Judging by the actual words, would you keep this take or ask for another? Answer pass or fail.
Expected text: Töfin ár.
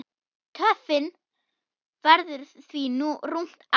fail